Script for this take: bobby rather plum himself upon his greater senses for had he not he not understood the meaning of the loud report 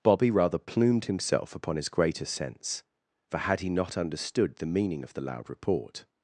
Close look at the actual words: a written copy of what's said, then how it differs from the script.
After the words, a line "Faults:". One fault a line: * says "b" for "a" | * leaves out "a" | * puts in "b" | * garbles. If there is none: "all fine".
bobby rather plumed himself upon his greater sense for had he not understood the meaning of the loud report
Faults:
* says "plumed" for "plum"
* says "sense" for "senses"
* leaves out "he not"